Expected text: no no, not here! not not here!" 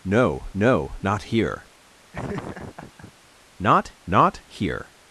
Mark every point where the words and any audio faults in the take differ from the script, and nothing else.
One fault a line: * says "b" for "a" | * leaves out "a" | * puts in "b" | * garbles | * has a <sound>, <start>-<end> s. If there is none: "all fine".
* has a laugh, 2.1-3.1 s